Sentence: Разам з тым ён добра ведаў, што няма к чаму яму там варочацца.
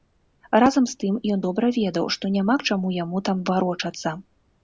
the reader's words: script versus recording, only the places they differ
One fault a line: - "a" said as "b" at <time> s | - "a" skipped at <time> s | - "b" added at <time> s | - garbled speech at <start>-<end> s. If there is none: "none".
none